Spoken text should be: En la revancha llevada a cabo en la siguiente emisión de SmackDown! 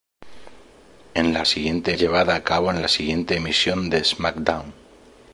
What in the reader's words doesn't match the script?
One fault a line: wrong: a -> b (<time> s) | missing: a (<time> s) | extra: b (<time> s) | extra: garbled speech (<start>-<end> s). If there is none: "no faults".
wrong: revancha -> siguiente (1.5 s)